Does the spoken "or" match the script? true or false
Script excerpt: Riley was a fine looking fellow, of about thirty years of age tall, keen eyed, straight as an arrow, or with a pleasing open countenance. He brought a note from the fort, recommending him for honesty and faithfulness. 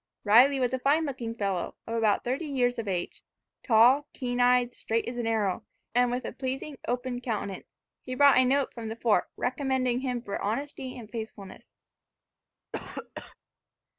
false